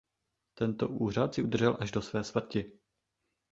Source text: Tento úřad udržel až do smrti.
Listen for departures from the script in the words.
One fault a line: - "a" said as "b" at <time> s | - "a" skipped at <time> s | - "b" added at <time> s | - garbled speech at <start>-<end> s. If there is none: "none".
- "si" added at 1.3 s
- "své" added at 2.0 s